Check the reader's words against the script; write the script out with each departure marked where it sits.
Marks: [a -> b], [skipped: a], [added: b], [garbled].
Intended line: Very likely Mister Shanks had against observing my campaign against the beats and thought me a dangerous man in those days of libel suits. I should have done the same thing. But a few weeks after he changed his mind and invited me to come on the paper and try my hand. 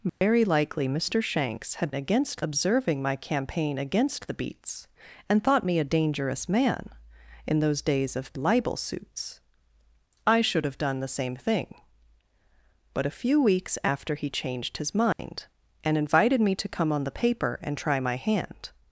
Very likely Mister Shanks had against observing my campaign against the beats and thought me a dangerous man in those days of libel suits. I should have done the same thing. But a few weeks after he changed his mind and invited me to come on the paper and try my hand.